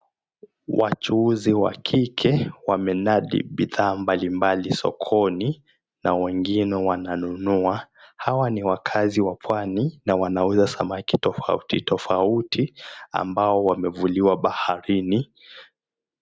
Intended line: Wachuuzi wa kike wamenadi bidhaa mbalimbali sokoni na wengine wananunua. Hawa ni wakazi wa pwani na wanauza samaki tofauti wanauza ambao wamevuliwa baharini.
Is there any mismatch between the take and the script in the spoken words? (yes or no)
yes